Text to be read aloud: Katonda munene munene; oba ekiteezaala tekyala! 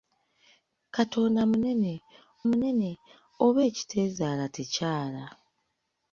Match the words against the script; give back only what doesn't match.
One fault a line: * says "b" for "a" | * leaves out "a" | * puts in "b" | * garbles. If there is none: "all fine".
all fine